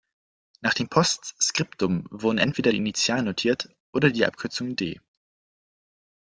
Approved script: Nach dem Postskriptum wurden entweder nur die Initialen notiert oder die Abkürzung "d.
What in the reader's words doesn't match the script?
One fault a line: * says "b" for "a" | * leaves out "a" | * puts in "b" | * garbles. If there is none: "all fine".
* leaves out "nur"